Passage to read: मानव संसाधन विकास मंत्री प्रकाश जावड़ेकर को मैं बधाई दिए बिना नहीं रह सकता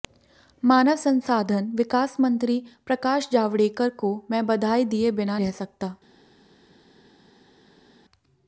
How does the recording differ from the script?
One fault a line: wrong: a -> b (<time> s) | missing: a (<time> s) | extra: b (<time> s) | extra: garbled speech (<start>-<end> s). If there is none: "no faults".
missing: नहीं (5.4 s)